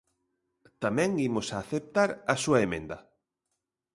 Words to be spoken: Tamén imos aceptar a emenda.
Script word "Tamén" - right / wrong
right